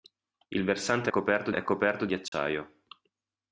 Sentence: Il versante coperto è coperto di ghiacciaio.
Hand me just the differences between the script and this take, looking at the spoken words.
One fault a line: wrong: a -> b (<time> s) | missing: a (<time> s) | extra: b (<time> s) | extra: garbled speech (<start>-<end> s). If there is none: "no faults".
no faults